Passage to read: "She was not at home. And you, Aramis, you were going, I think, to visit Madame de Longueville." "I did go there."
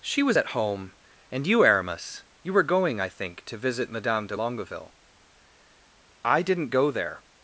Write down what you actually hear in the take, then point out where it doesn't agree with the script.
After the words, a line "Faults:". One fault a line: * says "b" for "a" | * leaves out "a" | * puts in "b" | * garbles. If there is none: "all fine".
"She was at home. And you, Aramis, you were going, I think, to visit Madame de Longueville." "I didn't go there."
Faults:
* leaves out "not"
* says "didn't" for "did"